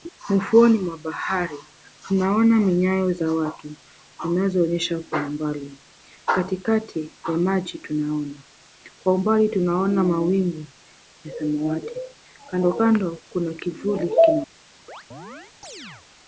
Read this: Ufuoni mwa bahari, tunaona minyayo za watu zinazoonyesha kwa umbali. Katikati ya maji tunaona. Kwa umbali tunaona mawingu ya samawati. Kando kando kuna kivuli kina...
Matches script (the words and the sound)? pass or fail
fail